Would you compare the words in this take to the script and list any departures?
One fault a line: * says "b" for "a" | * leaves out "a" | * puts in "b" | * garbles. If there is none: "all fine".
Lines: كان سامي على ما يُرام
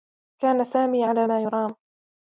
all fine